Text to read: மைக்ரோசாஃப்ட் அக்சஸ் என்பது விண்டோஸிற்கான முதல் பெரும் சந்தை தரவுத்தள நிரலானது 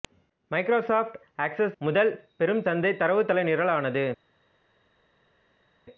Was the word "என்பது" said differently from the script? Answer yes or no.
yes